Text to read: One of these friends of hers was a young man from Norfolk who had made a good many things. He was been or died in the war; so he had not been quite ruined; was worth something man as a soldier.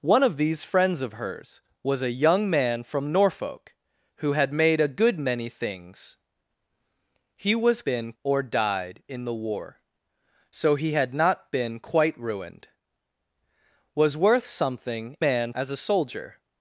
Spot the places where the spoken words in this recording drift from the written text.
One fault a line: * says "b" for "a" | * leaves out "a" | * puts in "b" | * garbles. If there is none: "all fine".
all fine